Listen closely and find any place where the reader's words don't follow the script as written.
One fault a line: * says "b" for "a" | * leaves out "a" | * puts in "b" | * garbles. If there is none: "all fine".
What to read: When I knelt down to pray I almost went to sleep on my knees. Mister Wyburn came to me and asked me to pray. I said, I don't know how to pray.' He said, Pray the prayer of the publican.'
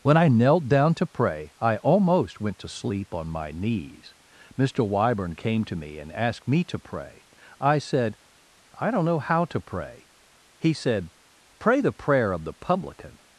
all fine